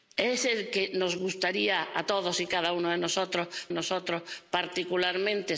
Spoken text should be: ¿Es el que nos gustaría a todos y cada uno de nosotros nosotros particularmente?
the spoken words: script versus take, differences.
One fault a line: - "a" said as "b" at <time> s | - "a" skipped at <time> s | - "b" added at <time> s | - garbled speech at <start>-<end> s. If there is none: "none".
none